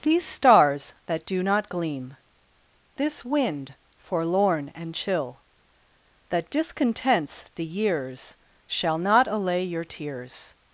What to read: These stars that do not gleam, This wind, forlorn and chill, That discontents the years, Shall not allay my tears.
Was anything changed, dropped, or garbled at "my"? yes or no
yes